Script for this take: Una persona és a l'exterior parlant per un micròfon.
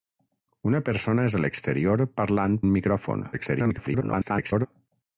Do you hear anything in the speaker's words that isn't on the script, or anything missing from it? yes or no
yes